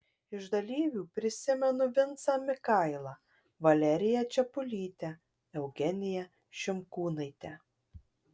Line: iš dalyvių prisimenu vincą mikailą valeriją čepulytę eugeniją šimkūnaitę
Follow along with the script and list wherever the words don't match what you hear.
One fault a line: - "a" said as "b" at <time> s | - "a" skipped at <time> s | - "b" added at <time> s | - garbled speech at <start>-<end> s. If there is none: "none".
none